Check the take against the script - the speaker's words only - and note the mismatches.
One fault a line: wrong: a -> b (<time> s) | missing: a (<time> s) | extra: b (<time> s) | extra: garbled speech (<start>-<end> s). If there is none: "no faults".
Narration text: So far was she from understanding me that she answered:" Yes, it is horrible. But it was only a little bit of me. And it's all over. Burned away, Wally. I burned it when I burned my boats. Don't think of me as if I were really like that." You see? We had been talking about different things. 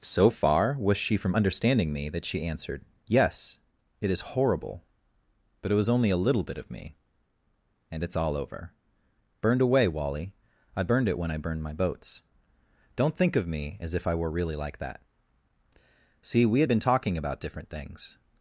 missing: You (15.0 s)